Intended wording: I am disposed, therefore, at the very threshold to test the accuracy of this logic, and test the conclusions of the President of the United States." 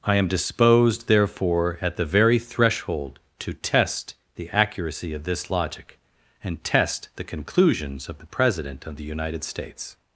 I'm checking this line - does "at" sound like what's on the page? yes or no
yes